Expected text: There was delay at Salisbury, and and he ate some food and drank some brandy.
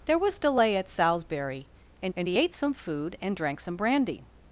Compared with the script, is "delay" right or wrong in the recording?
right